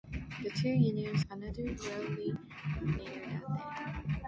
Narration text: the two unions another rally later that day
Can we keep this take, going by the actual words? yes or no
yes